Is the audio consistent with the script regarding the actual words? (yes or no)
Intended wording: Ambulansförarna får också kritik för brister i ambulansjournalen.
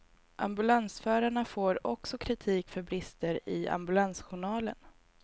yes